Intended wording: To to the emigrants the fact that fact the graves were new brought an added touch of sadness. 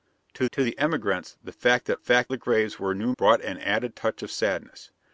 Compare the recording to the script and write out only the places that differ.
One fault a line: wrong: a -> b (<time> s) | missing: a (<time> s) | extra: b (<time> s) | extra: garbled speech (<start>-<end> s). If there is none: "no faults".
no faults